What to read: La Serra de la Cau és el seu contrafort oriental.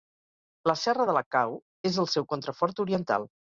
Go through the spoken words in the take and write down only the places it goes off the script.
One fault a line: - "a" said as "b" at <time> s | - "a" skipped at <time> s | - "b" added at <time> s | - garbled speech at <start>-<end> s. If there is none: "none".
none